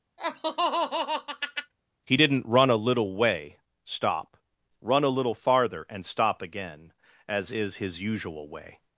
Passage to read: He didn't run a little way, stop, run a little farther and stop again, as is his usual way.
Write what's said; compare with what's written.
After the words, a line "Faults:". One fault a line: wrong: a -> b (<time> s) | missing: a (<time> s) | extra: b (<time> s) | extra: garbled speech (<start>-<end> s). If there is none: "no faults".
He didn't run a little way, stop, run a little farther and stop again, as is his usual way.
Faults:
no faults